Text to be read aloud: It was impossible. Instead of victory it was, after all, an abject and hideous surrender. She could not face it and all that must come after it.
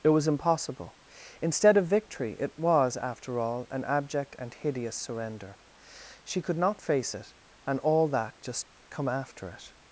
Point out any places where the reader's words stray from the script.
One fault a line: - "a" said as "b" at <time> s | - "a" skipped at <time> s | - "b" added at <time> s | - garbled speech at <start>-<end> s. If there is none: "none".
- "must" said as "just" at 8.4 s